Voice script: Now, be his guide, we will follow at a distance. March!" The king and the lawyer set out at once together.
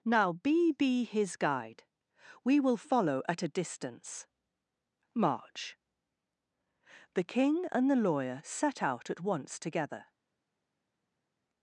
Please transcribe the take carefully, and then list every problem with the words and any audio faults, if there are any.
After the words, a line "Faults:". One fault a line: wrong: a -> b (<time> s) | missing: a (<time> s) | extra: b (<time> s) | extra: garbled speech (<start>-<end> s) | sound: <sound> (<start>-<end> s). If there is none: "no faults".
Now, be be his guide, we will follow at a distance. March!" The king and the lawyer set out at once together.
Faults:
extra: be (0.7 s)